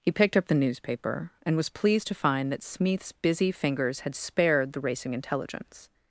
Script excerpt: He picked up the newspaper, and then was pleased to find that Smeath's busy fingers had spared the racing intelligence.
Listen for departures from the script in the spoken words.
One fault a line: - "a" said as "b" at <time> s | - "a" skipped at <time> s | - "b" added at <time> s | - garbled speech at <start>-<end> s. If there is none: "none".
- "then" skipped at 1.6 s